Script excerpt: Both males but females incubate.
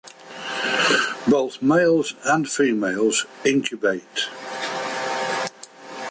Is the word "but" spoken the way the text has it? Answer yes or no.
no